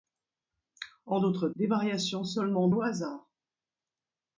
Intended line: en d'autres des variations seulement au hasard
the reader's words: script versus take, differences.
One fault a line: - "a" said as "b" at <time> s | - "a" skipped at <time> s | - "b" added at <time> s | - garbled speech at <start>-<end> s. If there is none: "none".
none